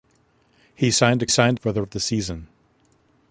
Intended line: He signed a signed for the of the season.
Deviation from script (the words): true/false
false